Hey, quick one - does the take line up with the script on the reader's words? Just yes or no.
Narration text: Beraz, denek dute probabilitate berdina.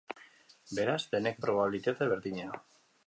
no